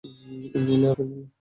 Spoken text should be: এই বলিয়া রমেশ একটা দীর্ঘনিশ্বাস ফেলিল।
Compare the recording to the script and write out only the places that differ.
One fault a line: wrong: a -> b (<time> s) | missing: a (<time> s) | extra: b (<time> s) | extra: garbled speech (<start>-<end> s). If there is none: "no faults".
missing: রমেশ একটা দীর্ঘনিশ্বাস (0.9 s)